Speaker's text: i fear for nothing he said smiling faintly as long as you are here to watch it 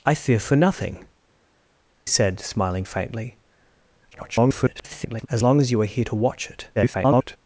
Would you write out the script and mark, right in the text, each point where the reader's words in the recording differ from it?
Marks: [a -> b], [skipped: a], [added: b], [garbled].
i fear for nothing [skipped: he] said smiling faintly [garbled] as long as you are here to watch it [garbled]